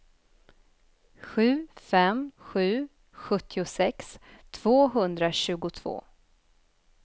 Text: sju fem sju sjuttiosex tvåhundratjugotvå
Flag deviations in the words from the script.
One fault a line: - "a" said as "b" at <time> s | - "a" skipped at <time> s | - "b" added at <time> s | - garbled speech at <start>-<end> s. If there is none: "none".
none